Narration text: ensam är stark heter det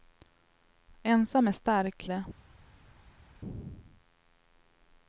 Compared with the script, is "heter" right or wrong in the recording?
wrong